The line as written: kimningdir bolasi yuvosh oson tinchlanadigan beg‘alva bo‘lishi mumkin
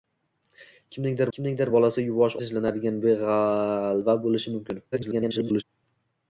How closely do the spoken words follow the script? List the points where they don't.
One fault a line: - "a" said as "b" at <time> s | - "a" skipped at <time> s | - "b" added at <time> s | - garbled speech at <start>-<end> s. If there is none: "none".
- "kimningdir" added at 1.4 s
- "oson" skipped at 2.4 s
- garbled speech at 4.9-5.6 s